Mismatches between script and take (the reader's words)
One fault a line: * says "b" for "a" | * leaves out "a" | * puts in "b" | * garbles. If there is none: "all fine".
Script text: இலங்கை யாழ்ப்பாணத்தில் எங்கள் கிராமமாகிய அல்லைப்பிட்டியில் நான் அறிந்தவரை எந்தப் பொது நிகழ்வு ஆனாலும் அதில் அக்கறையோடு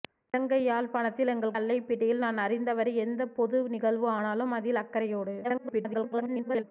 * leaves out "கிராமமாகிய"
* garbles